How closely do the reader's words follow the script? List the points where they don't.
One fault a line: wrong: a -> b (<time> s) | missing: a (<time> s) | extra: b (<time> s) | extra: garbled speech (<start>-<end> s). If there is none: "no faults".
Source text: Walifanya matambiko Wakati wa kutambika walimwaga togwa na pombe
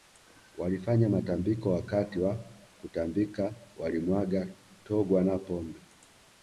no faults